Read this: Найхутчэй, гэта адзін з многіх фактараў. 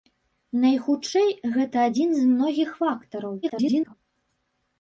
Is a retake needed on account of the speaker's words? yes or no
yes